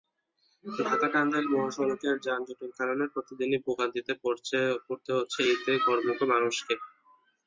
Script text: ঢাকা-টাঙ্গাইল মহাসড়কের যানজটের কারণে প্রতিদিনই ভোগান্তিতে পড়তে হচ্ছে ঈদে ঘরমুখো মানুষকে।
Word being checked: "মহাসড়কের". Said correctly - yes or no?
yes